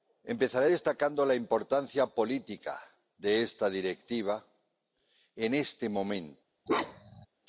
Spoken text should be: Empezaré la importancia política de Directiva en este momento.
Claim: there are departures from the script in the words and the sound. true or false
true